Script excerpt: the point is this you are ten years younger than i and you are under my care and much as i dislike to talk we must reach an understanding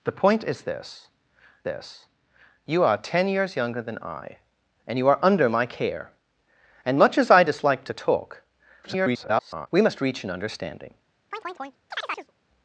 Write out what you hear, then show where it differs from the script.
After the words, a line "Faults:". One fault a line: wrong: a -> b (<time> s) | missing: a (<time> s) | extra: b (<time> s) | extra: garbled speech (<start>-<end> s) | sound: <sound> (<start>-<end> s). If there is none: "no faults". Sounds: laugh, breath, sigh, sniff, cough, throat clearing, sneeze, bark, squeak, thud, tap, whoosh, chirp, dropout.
the point is this this you are ten years younger than i and you are under my care and much as i dislike to talk [garbled] we must reach an understanding
Faults:
extra: this (1.6 s)
extra: garbled speech (8.8-9.7 s)
sound: chirp (11.3-12.3 s)